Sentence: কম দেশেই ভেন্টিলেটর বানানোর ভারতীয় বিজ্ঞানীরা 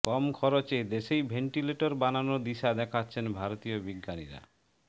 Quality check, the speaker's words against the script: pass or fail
fail